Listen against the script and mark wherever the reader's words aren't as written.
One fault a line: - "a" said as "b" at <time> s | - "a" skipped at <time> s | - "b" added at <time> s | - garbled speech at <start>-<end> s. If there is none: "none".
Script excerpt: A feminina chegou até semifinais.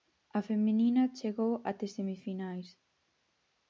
none